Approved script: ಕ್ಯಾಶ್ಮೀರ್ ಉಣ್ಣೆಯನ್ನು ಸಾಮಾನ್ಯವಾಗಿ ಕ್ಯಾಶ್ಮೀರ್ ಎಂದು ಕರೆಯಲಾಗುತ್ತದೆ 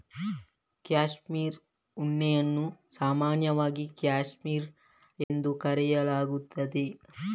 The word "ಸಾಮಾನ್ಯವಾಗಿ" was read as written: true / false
true